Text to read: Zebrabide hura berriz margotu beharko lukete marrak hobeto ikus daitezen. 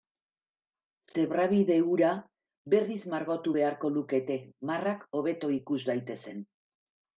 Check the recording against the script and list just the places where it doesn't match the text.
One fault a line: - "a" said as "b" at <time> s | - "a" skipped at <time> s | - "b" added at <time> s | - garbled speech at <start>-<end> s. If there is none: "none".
none